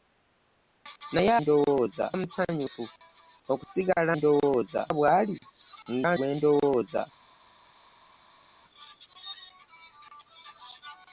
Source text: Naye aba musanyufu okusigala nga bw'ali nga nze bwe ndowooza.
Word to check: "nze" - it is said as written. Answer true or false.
false